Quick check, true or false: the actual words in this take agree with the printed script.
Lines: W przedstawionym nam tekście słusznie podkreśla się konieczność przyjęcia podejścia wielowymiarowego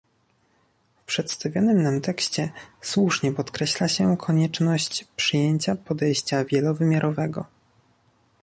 true